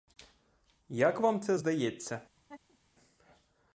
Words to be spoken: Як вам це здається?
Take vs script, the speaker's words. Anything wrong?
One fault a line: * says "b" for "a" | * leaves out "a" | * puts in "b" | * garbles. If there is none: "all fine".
all fine